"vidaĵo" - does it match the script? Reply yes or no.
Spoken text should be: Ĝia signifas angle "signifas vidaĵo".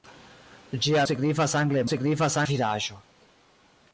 yes